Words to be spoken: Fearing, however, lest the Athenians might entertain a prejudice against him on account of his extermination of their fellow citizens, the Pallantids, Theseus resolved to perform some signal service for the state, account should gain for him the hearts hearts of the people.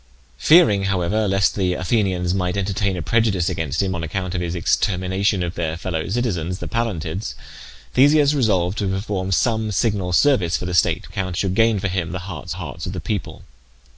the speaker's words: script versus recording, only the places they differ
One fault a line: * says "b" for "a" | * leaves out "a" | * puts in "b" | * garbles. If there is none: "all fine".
all fine